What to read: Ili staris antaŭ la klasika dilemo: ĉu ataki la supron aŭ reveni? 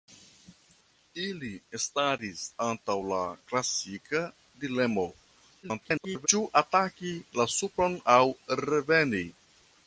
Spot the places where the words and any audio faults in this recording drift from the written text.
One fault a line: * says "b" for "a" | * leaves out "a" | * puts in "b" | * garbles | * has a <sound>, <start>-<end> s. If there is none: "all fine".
* garbles